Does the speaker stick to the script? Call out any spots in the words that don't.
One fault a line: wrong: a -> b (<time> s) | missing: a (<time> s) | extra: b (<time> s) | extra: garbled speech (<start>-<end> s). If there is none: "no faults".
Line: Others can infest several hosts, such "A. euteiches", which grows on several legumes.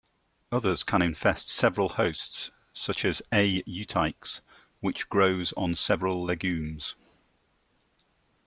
extra: as (3.0 s)